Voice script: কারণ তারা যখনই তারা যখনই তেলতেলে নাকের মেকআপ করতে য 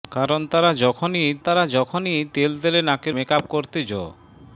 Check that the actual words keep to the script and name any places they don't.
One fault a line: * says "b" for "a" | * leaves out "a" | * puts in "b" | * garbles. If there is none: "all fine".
all fine